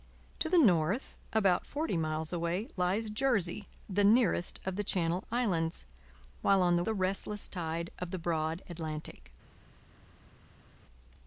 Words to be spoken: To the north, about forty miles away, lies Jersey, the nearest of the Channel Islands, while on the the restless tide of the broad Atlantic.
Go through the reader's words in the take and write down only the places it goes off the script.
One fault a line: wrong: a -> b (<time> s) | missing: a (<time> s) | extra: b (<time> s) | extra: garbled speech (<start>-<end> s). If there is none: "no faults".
no faults